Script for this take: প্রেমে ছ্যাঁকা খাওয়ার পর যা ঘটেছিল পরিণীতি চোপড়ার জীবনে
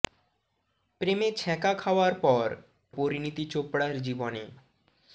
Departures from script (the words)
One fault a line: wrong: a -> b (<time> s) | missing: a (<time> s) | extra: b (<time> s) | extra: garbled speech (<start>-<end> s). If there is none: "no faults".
missing: যা ঘটেছিল (2.5 s)